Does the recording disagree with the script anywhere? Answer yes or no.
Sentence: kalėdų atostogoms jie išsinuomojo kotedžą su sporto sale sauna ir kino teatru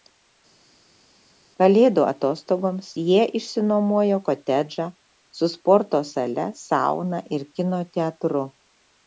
no